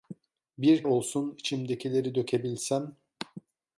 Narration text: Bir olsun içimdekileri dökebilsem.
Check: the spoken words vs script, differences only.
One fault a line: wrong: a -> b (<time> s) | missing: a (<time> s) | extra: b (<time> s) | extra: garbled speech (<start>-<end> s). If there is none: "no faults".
no faults